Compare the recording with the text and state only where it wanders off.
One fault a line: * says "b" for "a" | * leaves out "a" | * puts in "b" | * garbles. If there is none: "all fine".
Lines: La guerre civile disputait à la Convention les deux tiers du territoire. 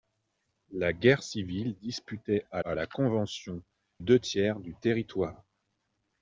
* puts in "à"
* leaves out "les"